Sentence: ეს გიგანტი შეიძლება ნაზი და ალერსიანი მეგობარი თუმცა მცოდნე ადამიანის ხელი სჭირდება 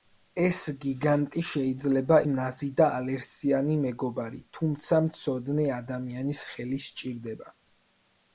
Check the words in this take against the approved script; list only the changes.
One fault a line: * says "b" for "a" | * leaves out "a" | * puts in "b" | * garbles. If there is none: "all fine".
all fine